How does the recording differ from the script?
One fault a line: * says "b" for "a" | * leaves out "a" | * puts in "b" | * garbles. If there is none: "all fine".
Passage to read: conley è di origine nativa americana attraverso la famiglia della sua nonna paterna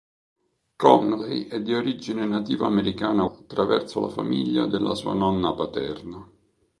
all fine